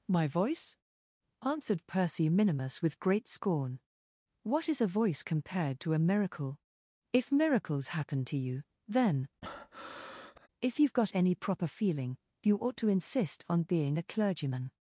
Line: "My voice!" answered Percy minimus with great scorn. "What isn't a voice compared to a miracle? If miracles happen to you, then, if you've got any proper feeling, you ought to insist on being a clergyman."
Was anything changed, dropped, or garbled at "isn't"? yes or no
yes